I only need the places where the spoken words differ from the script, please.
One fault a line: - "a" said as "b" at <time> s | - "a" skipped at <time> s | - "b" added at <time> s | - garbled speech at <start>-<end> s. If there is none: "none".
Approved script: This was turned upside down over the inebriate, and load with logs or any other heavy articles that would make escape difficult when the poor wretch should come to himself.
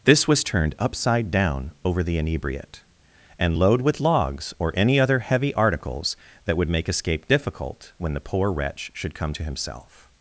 none